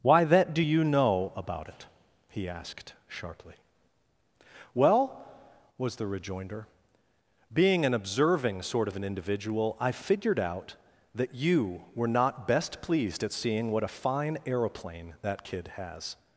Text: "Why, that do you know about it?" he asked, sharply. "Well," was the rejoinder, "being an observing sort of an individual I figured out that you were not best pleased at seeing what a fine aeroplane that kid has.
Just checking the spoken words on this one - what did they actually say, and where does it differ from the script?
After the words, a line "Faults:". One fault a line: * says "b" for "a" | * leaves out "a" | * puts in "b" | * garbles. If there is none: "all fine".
"Why, that do you know about it?" he asked, sharply. "Well," was the rejoinder, "being an observing sort of an individual I figured out that you were not best pleased at seeing what a fine aeroplane that kid has.
Faults:
all fine